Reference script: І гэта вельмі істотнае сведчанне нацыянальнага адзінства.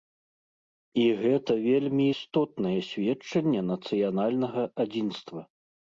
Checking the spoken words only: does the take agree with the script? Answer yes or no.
yes